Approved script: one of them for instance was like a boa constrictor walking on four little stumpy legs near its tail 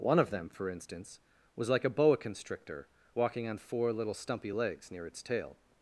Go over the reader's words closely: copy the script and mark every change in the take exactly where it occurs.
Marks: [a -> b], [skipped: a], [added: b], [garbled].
one of them for instance was like a boa constrictor walking on four little stumpy legs near its tail